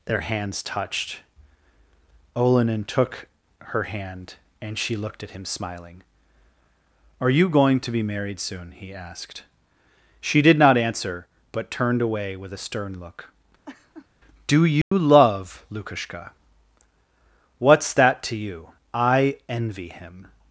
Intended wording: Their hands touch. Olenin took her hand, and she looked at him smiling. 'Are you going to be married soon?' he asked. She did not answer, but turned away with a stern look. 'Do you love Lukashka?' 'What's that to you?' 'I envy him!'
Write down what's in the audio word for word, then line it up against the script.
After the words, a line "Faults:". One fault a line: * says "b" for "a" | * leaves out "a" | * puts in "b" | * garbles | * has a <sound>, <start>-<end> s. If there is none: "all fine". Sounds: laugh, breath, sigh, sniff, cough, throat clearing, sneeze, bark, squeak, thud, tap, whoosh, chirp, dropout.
Their hands touched. Olenin took her hand, and she looked at him smiling. 'Are you going to be married soon?' he asked. She did not answer, but turned away with a stern look. 'Do you love Lukashka?' 'What's that to you?' 'I envy him!'
Faults:
* says "touched" for "touch"
* has a laugh, 13.6-14.1 s
* has a dropout, 14.8-14.9 s